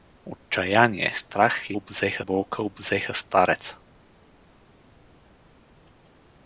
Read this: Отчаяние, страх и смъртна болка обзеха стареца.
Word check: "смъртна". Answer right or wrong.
wrong